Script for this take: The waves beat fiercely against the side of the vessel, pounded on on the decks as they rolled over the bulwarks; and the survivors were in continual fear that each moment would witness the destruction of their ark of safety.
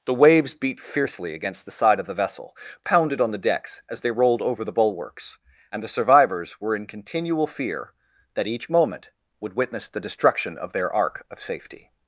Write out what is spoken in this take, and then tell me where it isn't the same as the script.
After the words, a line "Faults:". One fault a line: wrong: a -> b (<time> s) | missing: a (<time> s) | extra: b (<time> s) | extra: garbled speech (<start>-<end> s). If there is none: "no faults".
The waves beat fiercely against the side of the vessel, pounded on the decks as they rolled over the bulwarks; and the survivors were in continual fear that each moment would witness the destruction of their ark of safety.
Faults:
missing: on (3.3 s)